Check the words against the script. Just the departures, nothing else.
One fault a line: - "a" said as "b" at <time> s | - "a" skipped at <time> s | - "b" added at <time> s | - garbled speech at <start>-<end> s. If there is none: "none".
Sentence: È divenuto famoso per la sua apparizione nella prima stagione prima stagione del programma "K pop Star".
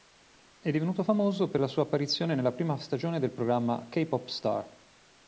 - "prima stagione" skipped at 3.2 s